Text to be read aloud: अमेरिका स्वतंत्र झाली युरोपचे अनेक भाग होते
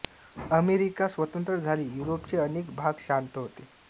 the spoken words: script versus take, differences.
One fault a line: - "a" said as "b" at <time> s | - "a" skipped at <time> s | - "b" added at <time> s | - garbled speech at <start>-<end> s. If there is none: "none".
- "शांत" added at 3.0 s